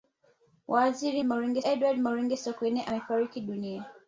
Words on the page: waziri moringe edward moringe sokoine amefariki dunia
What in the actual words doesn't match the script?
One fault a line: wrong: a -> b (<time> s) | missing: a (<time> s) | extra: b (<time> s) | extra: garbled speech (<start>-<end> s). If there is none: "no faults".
no faults